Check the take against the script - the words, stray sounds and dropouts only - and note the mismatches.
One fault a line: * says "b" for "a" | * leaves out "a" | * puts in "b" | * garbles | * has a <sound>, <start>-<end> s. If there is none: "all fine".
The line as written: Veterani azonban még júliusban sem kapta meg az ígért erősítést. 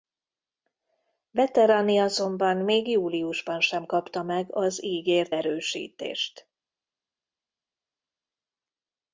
all fine